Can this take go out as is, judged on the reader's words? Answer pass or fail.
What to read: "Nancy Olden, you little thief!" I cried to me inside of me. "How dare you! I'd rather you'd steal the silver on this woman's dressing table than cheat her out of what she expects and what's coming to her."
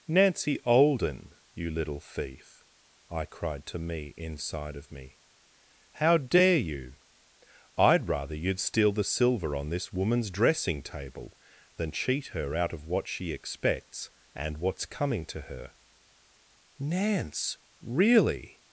fail